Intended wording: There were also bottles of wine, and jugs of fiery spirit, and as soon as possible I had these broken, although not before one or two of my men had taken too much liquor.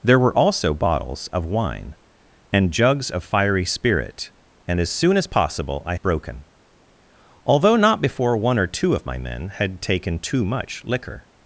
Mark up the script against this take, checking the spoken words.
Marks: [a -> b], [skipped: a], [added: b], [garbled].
There were also bottles of wine, and jugs of fiery spirit, and as soon as possible I [skipped: had these] broken, although not before one or two of my men had taken too much liquor.